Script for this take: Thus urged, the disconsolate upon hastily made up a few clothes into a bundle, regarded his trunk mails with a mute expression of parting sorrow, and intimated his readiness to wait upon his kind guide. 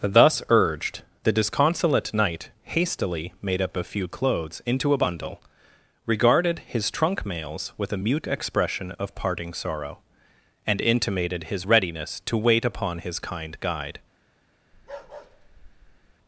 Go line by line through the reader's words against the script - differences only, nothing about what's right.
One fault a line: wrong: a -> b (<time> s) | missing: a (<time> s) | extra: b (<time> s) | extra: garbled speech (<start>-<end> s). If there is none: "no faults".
wrong: upon -> knight (2.1 s)